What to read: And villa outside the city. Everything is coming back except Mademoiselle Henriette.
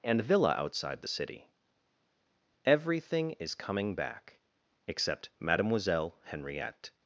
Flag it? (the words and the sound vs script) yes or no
no